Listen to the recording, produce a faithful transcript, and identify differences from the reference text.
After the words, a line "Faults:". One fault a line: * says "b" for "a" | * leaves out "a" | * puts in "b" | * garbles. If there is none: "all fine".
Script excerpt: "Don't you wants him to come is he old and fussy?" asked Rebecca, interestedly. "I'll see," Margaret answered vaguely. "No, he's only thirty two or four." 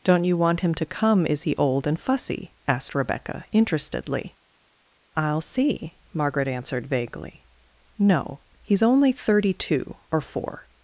"Don't you want him to come is he old and fussy?" asked Rebecca, interestedly. "I'll see," Margaret answered vaguely. "No, he's only thirty two or four."
Faults:
* says "want" for "wants"